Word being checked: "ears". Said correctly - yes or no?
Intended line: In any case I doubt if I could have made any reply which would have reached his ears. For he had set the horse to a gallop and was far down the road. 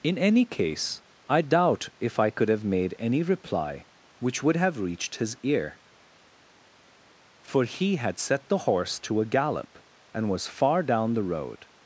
no